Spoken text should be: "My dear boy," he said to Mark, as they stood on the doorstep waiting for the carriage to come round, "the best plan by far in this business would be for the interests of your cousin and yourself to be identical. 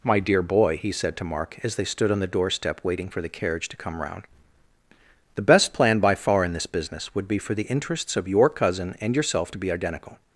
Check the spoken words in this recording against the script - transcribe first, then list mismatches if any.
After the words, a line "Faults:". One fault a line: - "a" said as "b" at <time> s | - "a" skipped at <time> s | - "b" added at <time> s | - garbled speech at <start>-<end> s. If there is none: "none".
"My dear boy," he said to Mark, as they stood on the doorstep waiting for the carriage to come round, "the best plan by far in this business would be for the interests of your cousin and yourself to be identical.
Faults:
none